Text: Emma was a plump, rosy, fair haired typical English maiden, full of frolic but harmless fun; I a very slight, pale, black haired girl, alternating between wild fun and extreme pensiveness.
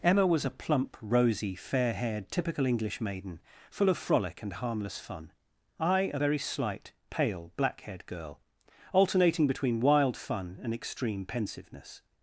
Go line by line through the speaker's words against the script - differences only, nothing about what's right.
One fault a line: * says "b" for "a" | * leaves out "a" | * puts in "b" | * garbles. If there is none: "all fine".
* says "and" for "but"